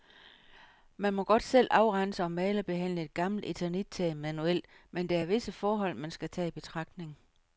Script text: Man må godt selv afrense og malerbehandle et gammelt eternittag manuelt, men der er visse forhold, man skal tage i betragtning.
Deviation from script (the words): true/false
false